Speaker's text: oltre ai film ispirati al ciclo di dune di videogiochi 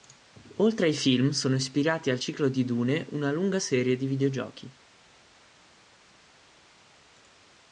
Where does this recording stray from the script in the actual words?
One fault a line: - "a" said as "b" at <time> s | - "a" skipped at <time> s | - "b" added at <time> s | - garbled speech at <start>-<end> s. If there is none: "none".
- "sono" added at 1.3 s
- "una lunga serie" added at 3.1 s